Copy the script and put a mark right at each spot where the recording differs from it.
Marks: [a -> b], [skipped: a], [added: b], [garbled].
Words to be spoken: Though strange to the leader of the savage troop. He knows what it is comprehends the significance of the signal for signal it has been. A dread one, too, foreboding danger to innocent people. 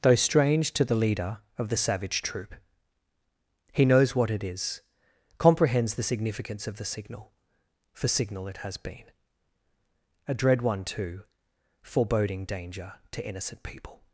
Though strange to the leader of the savage troop. He knows what it is comprehends the significance of the signal for signal it has been. A dread one, too, foreboding danger to innocent people.